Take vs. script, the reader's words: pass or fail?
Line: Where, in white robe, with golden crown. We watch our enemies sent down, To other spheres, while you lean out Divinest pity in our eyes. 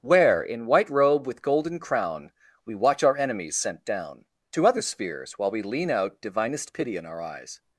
fail